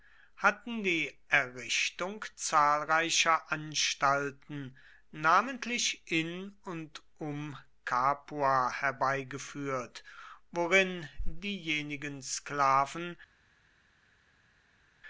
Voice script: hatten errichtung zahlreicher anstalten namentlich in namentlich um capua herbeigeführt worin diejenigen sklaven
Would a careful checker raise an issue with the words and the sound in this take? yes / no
yes